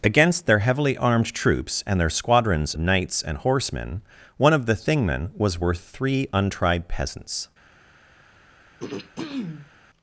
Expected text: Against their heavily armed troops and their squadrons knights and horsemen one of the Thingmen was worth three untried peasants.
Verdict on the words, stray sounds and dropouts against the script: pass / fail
fail